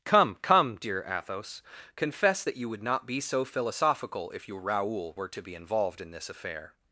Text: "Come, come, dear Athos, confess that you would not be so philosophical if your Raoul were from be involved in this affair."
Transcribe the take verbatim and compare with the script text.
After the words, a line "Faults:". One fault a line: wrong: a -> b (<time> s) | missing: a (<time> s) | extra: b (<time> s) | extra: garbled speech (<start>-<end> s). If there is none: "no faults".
"Come, come, dear Athos, confess that you would not be so philosophical if your Raoul were to be involved in this affair."
Faults:
wrong: from -> to (5.3 s)